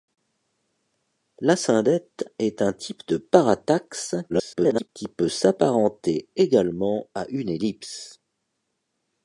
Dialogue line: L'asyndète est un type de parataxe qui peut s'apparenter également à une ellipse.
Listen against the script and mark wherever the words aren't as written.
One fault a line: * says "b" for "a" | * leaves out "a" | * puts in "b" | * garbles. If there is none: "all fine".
* garbles